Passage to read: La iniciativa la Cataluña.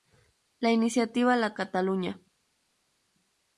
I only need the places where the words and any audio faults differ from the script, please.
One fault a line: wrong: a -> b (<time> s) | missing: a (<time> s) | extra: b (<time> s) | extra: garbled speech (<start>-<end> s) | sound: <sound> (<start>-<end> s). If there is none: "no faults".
no faults